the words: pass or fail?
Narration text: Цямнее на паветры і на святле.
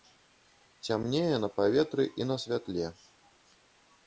pass